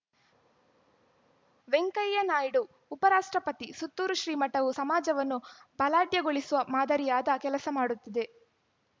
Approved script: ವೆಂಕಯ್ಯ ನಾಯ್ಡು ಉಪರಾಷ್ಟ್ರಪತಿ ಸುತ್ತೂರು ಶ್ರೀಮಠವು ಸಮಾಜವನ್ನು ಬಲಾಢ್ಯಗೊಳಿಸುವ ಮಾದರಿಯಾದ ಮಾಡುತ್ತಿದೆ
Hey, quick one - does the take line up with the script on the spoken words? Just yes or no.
no